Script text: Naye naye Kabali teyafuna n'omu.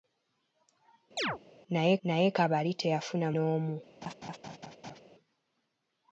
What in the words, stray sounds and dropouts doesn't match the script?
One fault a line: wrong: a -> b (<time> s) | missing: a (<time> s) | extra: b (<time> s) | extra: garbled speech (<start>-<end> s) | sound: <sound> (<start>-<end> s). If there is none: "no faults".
sound: chirp (1.2-1.4 s)
sound: laugh (4.0-5.0 s)